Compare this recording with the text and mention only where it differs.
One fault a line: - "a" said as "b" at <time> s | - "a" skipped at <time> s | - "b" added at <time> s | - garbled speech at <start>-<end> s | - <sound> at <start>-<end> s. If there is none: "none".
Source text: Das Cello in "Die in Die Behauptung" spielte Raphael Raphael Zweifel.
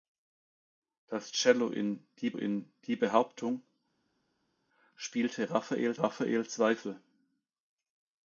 none